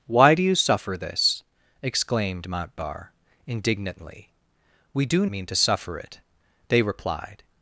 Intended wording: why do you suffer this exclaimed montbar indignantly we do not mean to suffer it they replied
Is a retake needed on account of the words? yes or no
yes